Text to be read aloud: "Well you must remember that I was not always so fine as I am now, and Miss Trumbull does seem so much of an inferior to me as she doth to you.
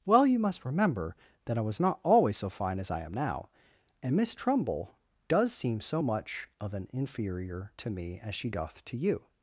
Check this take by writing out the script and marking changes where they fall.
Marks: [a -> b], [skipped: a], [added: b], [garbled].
"Well you must remember that I was not always so fine as I am now, and Miss Trumbull does seem so much of an inferior to me as she doth to you.